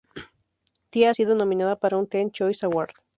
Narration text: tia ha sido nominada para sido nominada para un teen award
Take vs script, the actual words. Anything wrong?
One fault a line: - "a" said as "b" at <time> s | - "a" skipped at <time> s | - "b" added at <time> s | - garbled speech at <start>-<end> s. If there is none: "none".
- "sido nominada para" skipped at 2.0 s
- "choice" added at 2.3 s